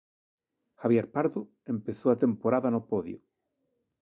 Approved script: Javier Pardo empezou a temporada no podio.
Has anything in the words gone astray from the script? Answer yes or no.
no